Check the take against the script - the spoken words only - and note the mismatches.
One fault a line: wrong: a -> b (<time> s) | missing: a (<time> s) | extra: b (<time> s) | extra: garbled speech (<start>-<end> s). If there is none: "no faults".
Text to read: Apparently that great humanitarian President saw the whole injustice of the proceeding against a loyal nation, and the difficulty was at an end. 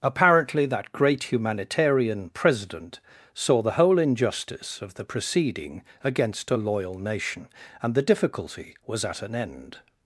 no faults